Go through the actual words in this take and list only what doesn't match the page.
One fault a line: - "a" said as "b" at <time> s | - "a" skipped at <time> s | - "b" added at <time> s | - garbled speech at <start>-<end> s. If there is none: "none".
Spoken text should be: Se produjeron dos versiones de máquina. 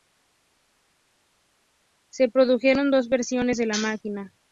- "la" added at 3.7 s